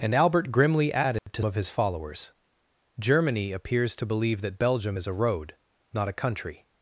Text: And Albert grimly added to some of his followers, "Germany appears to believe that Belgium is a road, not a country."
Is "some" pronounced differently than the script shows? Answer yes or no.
yes